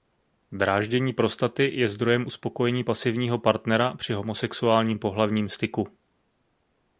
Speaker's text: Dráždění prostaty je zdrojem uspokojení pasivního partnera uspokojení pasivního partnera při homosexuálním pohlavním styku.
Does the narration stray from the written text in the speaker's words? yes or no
yes